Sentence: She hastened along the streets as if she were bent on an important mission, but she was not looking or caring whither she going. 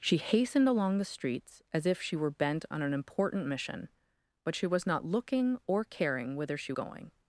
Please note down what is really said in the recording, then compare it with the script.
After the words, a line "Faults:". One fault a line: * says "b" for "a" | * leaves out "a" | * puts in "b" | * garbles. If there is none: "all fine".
She hastened along the streets as if she were bent on an important mission, but she was not looking or caring whither she going.
Faults:
all fine